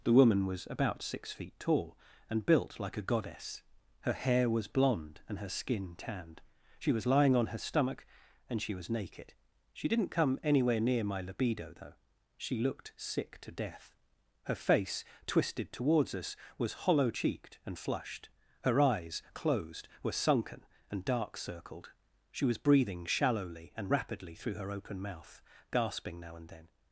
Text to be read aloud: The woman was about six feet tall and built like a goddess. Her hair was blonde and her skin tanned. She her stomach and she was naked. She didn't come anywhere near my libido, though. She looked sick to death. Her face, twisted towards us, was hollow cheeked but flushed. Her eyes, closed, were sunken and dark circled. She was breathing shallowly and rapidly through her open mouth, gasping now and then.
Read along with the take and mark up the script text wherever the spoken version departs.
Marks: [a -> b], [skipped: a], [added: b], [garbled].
The woman was about six feet tall and built like a goddess. Her hair was blonde and her skin tanned. She [added: was lying on] her stomach and she was naked. She didn't come anywhere near my libido, though. She looked sick to death. Her face, twisted towards us, was hollow cheeked [but -> and] flushed. Her eyes, closed, were sunken and dark circled. She was breathing shallowly and rapidly through her open mouth, gasping now and then.